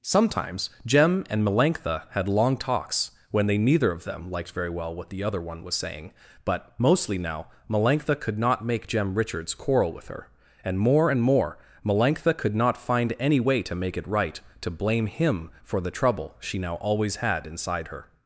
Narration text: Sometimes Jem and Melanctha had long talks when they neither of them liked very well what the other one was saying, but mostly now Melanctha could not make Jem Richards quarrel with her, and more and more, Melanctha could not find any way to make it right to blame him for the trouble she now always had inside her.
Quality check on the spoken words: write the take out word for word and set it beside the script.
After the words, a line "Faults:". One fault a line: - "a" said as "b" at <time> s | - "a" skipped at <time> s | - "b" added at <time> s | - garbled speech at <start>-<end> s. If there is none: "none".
Sometimes Jem and Melanctha had long talks when they neither of them liked very well what the other one was saying, but mostly now Melanctha could not make Jem Richards quarrel with her, and more and more, Melanctha could not find any way to make it right to blame him for the trouble she now always had inside her.
Faults:
none